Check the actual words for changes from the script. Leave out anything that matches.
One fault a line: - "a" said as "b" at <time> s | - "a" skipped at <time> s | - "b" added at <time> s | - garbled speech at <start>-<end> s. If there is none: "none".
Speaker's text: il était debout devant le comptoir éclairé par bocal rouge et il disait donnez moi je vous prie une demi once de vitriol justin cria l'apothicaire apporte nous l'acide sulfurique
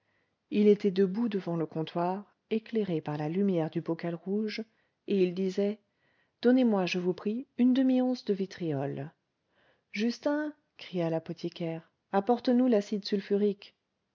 - "la lumière du" added at 3.2 s